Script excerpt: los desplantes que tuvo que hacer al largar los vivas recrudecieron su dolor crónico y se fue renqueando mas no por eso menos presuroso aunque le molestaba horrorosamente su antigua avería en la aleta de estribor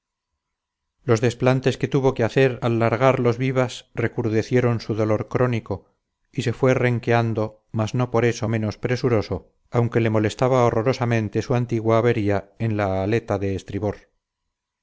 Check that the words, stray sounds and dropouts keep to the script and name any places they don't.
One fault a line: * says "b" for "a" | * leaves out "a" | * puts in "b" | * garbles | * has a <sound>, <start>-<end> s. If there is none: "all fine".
all fine